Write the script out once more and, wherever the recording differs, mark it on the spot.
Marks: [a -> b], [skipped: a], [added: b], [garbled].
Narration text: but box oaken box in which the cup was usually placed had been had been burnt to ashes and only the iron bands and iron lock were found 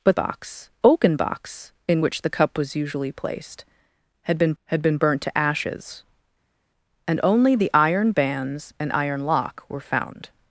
but box oaken box in which the cup was usually placed had been had been burnt to ashes and only the iron bands and iron lock were found